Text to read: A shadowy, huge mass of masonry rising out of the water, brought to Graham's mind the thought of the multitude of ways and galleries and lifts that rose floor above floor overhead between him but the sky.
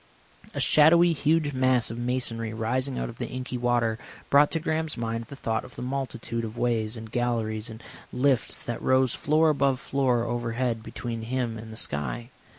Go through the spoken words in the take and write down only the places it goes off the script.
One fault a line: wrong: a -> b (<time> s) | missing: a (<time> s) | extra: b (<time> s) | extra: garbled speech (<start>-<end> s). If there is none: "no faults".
extra: inky (3.3 s)
wrong: but -> and (11.6 s)